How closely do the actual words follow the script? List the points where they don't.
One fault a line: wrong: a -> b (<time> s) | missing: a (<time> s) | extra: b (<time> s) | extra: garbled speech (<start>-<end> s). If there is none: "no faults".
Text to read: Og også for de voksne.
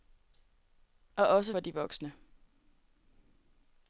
no faults